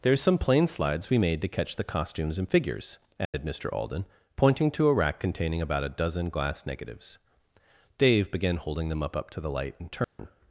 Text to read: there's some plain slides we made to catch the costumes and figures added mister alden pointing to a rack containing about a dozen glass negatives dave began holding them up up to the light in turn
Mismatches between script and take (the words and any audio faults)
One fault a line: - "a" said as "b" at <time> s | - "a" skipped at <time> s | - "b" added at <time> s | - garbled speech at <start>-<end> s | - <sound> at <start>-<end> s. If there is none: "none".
- dropout at 3.2-3.3 s
- dropout at 10.0-10.2 s